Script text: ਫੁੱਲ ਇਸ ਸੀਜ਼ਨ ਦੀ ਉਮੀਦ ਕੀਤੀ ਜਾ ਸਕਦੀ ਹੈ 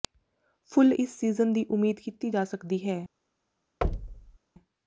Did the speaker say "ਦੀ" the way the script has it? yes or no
yes